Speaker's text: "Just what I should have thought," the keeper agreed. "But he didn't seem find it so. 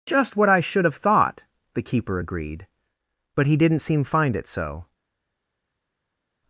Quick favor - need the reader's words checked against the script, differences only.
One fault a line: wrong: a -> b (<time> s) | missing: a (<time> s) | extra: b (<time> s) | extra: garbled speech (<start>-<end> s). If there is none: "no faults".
no faults